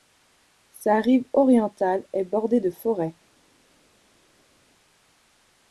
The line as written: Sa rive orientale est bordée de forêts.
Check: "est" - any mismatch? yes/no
no